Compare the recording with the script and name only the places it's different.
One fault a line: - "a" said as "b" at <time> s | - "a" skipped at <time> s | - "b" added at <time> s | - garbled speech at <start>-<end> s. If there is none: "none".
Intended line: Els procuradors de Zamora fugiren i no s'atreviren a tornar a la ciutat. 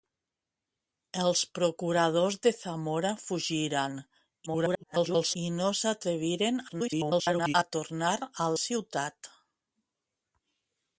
- garbled speech at 4.5-5.4 s
- garbled speech at 6.7-7.5 s
- "la" skipped at 8.5 s